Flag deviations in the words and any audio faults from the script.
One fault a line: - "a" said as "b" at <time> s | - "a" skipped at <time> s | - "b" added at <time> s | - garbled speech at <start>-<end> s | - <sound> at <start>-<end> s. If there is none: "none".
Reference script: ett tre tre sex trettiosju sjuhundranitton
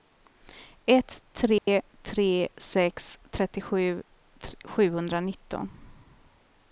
- dropout at 1.6-1.7 s